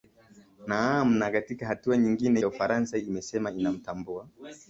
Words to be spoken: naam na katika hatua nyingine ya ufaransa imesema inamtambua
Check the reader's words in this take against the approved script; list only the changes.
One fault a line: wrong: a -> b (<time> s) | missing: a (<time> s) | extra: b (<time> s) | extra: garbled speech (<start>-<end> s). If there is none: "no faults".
no faults